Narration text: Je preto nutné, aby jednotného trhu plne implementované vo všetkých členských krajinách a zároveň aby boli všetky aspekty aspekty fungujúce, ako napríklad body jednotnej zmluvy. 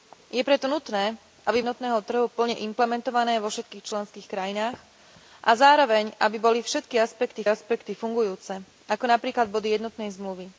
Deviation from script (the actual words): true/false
false